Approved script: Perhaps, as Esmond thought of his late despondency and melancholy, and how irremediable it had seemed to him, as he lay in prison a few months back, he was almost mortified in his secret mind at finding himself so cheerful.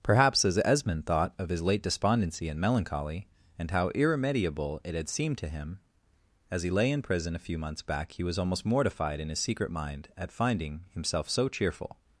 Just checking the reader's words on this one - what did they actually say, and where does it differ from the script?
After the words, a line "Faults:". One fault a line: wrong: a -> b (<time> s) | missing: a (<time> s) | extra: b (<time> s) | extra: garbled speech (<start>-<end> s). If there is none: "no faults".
Perhaps, as Esmond thought of his late despondency and melancholy, and how irremediable it had seemed to him, as he lay in prison a few months back, he was almost mortified in his secret mind at finding himself so cheerful.
Faults:
no faults